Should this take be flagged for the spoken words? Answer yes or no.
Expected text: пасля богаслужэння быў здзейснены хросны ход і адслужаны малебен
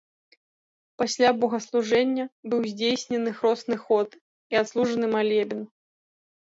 no